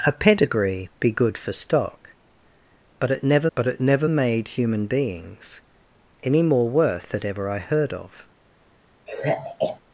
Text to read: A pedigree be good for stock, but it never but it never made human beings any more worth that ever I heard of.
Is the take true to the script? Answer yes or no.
yes